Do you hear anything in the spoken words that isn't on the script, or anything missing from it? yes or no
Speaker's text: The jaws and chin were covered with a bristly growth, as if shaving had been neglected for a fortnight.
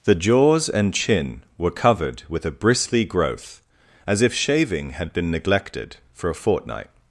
no